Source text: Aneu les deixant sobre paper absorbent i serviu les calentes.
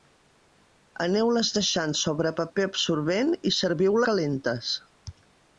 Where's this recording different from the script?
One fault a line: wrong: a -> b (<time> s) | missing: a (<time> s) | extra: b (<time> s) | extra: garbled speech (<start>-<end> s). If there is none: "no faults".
missing: les (4.0 s)